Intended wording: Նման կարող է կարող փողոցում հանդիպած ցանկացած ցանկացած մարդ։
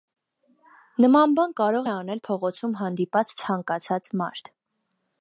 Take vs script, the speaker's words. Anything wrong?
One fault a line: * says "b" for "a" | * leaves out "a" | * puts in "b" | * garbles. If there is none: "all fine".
* puts in "բան"
* says "անել" for "կարող"
* leaves out "ցանկացած"